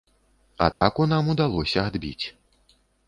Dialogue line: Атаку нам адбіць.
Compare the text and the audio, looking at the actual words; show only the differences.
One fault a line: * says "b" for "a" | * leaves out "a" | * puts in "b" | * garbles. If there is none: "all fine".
* puts in "удалося"